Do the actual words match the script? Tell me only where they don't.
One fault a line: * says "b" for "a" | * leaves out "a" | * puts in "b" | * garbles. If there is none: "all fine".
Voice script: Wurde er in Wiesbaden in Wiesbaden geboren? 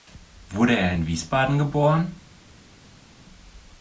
* leaves out "in Wiesbaden"